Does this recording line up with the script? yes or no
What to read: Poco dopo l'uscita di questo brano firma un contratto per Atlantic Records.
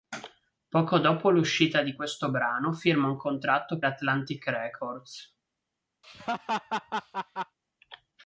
no